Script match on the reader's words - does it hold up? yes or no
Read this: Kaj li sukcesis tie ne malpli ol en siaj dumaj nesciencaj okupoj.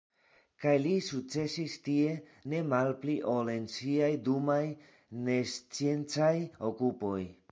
yes